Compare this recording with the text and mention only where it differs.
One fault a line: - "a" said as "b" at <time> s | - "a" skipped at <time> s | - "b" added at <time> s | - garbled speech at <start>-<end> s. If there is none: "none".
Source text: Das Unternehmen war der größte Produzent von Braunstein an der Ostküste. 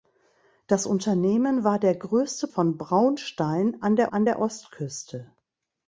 - "Produzent" skipped at 2.5 s
- "an der" added at 4.1 s